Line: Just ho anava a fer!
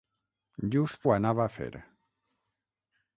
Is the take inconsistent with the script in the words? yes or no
no